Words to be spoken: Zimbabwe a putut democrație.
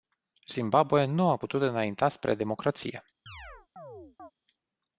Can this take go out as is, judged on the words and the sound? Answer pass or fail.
fail